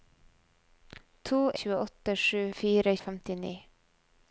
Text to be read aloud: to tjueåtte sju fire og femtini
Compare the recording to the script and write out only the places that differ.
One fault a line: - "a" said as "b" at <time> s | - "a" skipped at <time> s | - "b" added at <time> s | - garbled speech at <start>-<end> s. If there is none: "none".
none